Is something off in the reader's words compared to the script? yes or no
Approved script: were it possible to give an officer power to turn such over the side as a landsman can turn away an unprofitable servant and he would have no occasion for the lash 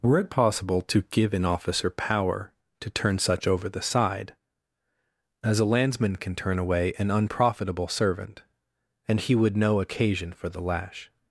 yes